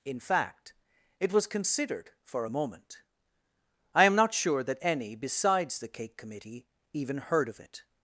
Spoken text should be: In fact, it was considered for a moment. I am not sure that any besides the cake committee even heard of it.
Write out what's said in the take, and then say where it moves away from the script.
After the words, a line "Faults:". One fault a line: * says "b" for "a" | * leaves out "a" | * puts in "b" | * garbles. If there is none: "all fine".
In fact, it was considered for a moment. I am not sure that any besides the cake committee even heard of it.
Faults:
all fine